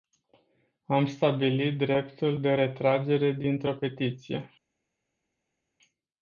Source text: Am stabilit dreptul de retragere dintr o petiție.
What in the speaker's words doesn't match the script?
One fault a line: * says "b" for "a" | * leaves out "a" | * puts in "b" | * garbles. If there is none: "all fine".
all fine